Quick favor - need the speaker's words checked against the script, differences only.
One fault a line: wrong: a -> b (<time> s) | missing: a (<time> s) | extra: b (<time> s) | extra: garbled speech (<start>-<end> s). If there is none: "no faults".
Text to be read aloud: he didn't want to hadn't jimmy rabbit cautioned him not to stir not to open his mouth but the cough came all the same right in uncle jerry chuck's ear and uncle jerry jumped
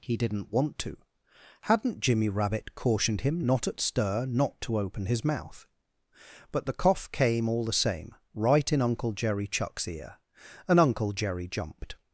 wrong: to -> at (3.7 s)